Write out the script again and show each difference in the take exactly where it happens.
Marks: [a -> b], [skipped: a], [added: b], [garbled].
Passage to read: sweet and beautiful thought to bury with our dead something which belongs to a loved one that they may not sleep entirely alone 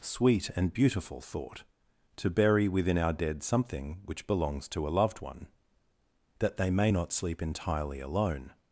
sweet and beautiful thought to bury [with -> within] our dead something which belongs to a loved one that they may not sleep entirely alone